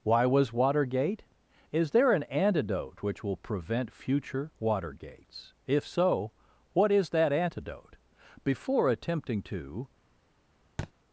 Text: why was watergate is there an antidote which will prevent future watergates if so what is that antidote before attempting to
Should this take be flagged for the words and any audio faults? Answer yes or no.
yes